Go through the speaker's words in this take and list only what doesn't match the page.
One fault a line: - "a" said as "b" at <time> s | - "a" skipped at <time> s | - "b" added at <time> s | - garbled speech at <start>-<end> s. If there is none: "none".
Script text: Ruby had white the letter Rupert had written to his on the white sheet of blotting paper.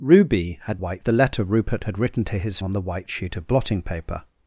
none